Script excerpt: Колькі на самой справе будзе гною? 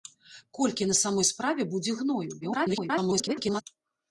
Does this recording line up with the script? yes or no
no